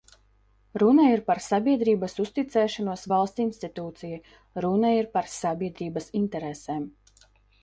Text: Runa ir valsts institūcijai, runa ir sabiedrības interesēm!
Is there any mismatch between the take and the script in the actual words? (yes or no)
yes